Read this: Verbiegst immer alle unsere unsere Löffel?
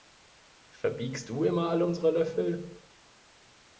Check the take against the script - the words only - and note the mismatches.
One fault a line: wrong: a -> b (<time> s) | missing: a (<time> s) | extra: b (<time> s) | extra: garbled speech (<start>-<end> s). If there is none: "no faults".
extra: du (1.3 s)
missing: unsere (2.1 s)